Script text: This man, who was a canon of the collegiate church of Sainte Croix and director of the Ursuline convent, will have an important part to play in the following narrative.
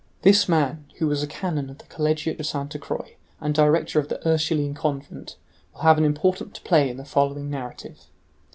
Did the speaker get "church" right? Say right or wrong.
wrong